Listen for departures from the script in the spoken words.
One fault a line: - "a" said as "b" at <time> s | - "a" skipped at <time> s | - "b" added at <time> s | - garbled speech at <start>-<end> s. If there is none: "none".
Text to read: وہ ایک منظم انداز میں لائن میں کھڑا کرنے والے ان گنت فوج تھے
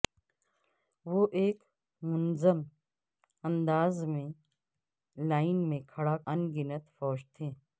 - "کرنے والے" skipped at 6.2 s